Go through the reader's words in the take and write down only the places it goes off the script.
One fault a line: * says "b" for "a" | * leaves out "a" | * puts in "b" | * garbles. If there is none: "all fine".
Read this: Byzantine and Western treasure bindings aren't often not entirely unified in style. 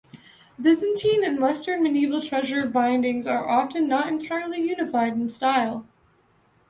* puts in "medieval"
* says "are" for "aren't"